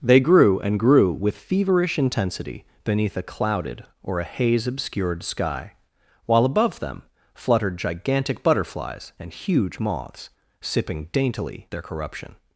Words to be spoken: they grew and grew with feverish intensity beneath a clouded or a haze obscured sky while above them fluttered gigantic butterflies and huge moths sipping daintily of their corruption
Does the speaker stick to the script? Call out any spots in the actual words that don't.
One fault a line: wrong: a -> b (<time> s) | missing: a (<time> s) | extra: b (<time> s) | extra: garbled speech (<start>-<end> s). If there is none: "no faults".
missing: of (11.7 s)